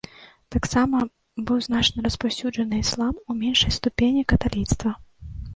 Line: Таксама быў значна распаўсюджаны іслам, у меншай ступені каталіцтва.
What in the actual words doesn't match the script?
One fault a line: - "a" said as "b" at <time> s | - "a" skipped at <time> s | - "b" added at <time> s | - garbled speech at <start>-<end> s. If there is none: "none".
none